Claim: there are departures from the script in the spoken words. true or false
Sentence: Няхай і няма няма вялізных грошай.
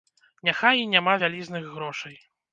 true